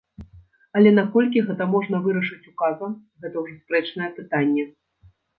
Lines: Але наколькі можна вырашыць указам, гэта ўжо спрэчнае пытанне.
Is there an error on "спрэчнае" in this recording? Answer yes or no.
no